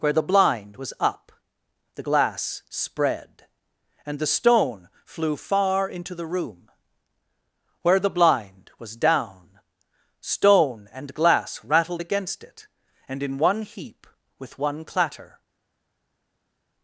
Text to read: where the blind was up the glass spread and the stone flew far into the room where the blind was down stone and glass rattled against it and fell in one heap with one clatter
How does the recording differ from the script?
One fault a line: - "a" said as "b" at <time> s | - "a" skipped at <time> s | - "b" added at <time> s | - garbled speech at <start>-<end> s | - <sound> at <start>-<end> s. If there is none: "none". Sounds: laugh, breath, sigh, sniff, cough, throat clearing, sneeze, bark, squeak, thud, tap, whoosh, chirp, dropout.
- "fell" skipped at 13.2 s